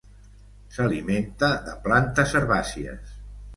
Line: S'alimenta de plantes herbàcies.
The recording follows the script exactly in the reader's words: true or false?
true